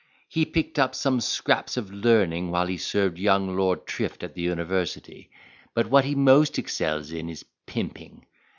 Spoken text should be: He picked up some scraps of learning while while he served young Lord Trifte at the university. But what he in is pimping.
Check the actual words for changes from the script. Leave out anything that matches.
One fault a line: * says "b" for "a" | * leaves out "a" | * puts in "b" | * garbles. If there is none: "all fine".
* leaves out "while"
* puts in "most excels"